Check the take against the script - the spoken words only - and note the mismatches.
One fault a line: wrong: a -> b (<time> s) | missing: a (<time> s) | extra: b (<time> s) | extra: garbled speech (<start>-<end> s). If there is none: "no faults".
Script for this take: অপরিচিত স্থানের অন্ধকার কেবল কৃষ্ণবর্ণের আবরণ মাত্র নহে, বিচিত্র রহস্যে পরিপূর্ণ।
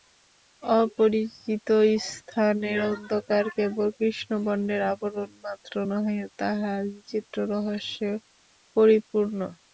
extra: তাহা (6.4 s)